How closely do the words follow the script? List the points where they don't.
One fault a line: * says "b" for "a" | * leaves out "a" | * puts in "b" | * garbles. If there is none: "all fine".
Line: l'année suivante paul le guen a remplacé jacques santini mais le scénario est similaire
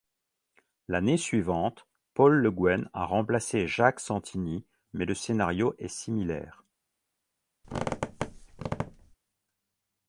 all fine